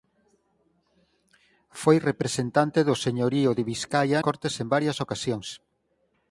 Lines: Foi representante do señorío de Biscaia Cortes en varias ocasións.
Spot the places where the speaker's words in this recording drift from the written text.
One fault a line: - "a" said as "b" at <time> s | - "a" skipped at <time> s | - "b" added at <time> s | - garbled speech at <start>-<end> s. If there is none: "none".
none